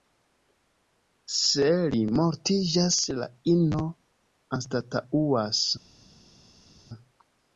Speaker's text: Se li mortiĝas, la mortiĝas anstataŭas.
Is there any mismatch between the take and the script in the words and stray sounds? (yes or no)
yes